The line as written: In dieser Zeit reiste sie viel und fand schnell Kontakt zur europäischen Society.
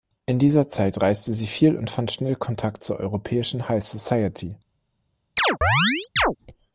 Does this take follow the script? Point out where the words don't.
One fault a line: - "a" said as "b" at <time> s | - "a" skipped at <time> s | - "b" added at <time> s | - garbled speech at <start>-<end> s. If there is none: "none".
- "High" added at 3.7 s